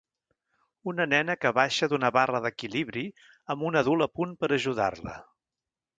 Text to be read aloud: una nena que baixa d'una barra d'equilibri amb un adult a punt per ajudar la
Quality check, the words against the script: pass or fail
pass